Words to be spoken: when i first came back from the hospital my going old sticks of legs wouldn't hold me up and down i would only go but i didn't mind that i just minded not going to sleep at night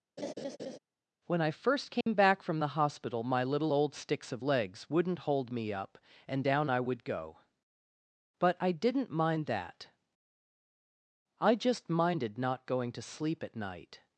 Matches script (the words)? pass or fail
fail